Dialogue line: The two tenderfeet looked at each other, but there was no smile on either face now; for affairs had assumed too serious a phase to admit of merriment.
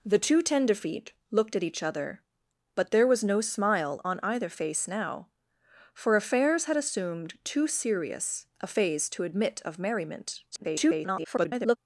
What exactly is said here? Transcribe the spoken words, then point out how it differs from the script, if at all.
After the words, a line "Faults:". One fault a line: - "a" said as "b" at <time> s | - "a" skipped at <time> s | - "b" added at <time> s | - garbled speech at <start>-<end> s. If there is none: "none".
The two tenderfeet looked at each other, but there was no smile on either face now; for affairs had assumed too serious a phase to admit of merriment. [garbled]
Faults:
- garbled speech at 10.5-11.8 s